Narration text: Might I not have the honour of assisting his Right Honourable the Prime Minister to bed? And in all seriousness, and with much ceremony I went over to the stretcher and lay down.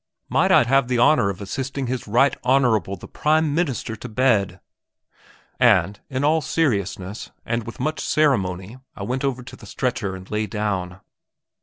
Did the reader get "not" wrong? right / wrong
wrong